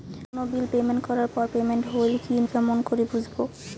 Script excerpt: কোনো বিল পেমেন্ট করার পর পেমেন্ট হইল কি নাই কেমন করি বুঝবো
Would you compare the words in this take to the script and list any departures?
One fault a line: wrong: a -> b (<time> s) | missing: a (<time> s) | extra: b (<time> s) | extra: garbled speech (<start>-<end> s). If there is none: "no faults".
missing: নাই (2.4 s)